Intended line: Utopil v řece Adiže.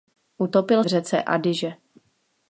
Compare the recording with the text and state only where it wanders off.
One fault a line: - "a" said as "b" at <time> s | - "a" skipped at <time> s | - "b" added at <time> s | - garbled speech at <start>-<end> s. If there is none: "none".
none